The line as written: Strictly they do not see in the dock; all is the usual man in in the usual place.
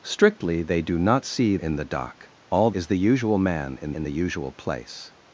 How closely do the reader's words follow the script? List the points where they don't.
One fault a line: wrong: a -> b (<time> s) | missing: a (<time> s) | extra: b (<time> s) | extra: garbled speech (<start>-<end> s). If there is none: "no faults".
no faults